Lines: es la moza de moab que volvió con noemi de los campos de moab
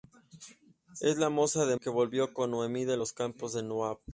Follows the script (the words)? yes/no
no